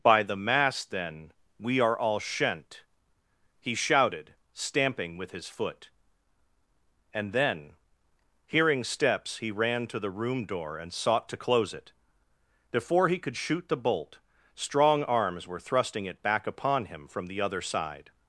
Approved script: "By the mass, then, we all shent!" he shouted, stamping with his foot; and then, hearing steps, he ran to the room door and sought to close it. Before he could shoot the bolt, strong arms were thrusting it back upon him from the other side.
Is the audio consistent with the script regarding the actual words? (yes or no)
no